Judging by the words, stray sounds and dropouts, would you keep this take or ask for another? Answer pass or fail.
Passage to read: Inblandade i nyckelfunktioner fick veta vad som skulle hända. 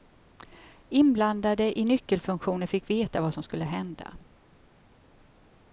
pass